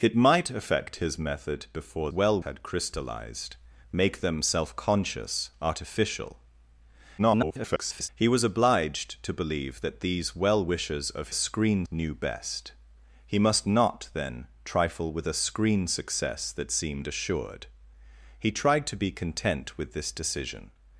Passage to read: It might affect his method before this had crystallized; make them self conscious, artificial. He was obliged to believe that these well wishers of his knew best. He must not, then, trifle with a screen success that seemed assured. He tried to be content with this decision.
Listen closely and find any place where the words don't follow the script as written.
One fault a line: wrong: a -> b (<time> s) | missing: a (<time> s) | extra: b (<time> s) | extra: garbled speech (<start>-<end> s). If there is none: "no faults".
wrong: this -> well (2.1 s)
extra: garbled speech (7.2-8.1 s)
wrong: his -> screen (11.3 s)